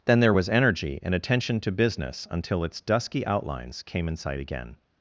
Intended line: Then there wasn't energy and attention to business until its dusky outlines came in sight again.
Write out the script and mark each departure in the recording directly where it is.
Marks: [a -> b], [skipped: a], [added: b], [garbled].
Then there [wasn't -> was] energy and attention to business until its dusky outlines came in sight again.